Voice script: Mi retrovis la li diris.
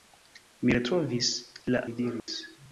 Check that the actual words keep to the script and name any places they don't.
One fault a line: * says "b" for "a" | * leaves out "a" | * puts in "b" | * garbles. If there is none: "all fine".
all fine